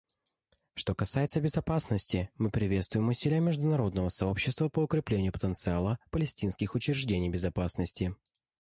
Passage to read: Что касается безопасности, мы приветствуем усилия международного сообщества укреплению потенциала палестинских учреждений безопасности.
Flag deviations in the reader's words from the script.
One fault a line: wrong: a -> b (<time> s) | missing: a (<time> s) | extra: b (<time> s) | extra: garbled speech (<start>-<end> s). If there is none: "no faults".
extra: по (4.7 s)